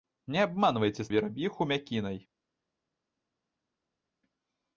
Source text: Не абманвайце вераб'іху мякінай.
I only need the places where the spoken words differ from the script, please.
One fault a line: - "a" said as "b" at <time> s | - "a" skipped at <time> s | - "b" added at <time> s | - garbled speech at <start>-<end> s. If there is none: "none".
none